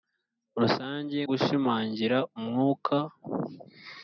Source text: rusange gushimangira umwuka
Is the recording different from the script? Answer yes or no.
no